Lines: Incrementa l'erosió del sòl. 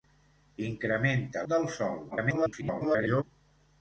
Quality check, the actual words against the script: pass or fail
fail